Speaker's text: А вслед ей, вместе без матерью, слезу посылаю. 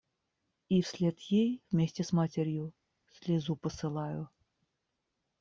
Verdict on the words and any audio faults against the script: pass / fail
fail